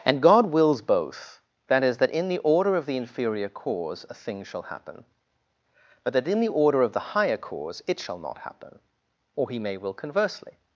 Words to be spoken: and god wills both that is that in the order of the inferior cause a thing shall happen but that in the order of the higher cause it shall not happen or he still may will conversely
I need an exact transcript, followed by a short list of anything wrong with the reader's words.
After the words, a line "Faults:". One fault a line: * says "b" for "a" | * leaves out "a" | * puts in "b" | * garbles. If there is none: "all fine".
and god wills both that is that in the order of the inferior cause a thing shall happen but that in the order of the higher cause it shall not happen or he may will conversely
Faults:
* leaves out "still"